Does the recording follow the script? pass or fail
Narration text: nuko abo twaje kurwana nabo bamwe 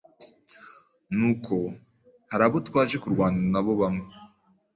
fail